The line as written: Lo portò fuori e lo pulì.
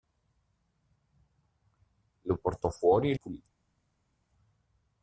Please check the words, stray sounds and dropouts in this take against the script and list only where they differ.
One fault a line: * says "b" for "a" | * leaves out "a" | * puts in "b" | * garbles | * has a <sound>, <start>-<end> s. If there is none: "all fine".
* leaves out "lo"